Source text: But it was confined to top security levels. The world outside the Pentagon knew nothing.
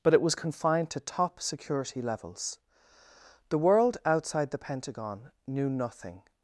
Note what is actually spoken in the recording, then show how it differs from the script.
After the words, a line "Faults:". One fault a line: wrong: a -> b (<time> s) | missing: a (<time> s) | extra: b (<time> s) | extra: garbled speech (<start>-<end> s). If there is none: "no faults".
But it was confined to top security levels. The world outside the Pentagon knew nothing.
Faults:
no faults